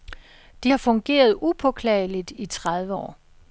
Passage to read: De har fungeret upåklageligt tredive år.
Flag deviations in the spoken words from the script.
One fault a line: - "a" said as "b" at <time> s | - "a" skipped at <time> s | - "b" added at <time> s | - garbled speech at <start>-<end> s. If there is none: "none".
- "i" added at 2.3 s